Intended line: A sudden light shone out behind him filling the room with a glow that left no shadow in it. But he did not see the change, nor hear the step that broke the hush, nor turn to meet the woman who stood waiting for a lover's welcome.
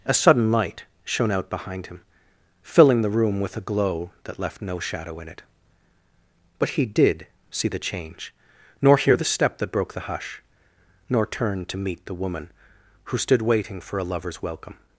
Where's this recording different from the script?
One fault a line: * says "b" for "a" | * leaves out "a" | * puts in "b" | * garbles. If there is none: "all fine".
* leaves out "not"